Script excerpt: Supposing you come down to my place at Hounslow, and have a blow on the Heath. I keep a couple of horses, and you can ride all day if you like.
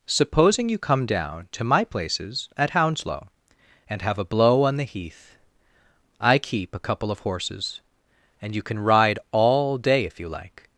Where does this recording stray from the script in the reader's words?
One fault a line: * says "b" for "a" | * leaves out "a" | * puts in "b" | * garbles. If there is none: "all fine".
* says "places" for "place"